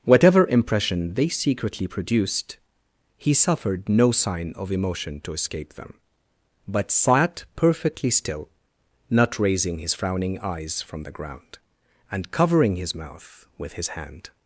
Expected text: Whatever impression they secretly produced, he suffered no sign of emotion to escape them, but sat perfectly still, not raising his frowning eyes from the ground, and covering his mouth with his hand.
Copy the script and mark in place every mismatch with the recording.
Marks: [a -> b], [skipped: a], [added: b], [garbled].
Whatever impression they secretly produced, he suffered no sign of emotion to escape them, but sat perfectly still, not raising his frowning eyes from the ground, and covering his mouth with his hand.